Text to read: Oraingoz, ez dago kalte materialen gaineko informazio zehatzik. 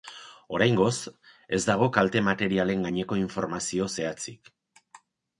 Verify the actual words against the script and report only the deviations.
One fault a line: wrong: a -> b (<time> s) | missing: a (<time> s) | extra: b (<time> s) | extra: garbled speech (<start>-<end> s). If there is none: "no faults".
no faults